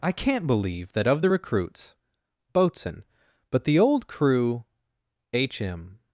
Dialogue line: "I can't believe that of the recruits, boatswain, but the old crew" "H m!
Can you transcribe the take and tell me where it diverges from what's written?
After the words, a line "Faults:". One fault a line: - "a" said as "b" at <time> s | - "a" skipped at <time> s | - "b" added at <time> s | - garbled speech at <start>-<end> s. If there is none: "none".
"I can't believe that of the recruits, boatswain, but the old crew" "H m!
Faults:
none